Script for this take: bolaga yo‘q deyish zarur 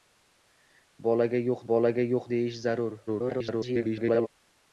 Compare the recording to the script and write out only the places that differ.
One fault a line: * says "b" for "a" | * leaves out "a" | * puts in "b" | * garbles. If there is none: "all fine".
* puts in "bolaga yo‘q"
* garbles